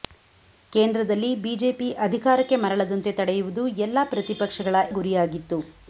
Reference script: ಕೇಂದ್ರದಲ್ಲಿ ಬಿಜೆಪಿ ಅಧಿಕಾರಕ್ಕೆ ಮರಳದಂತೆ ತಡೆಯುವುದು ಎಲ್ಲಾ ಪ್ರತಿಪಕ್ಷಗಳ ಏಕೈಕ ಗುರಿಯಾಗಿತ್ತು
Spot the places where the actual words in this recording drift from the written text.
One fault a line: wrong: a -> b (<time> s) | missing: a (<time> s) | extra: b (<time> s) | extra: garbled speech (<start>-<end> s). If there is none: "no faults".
missing: ಏಕೈಕ (4.8 s)